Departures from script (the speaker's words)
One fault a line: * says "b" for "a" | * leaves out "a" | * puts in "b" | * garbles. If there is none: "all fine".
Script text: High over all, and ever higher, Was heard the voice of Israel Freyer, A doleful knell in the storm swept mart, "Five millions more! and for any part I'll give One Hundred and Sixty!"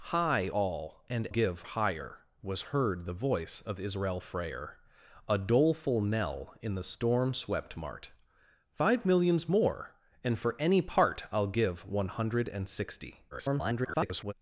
* leaves out "over"
* says "give" for "ever"
* garbles